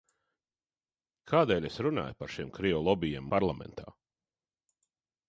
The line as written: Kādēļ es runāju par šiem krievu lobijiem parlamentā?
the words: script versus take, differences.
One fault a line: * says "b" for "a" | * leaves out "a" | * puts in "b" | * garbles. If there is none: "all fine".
all fine